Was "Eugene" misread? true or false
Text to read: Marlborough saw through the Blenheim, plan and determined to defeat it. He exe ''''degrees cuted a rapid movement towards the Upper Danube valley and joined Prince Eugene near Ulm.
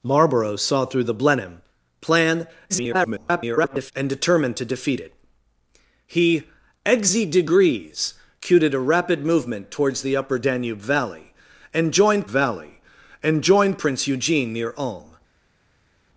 false